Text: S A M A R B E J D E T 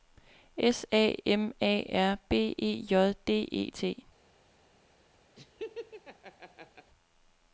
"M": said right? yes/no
yes